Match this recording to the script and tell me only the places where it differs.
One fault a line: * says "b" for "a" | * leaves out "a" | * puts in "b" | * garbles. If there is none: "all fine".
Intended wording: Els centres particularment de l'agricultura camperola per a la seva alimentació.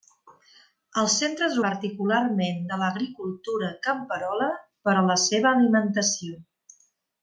all fine